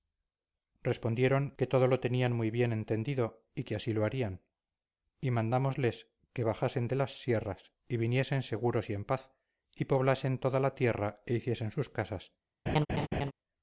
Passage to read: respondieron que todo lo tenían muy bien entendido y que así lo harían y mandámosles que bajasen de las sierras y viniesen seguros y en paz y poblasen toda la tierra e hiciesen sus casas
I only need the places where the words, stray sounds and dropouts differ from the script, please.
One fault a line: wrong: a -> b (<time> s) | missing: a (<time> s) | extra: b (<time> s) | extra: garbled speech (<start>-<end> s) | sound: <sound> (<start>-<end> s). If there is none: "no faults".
sound: laugh (12.7-13.3 s)